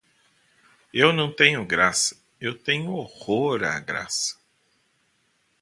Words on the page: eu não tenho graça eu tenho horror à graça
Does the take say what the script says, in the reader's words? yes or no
yes